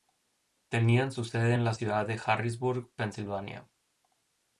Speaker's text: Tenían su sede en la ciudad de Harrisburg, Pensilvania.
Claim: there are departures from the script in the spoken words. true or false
false